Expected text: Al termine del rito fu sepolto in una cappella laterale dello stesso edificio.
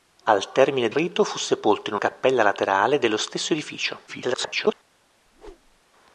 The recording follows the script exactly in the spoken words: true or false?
false